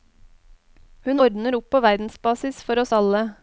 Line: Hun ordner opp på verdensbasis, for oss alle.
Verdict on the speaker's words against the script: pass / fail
pass